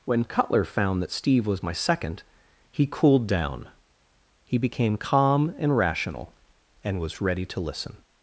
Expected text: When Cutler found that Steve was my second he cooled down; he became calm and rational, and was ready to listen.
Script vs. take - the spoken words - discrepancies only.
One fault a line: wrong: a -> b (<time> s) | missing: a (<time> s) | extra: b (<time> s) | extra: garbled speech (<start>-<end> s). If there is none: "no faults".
no faults